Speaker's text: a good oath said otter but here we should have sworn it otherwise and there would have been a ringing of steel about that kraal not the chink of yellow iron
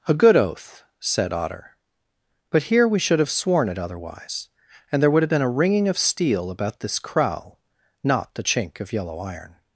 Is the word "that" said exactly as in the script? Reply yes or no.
no